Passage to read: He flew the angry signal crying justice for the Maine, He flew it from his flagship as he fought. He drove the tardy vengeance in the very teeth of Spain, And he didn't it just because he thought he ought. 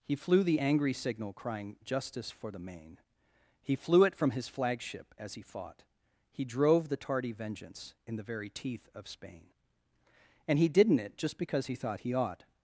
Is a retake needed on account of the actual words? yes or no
no